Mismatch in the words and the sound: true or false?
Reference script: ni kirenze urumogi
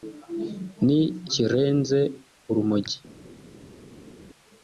false